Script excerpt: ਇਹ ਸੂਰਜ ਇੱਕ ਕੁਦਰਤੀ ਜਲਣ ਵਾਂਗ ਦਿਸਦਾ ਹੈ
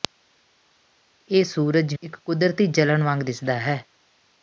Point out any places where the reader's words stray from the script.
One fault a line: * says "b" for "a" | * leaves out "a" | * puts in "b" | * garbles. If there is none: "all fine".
all fine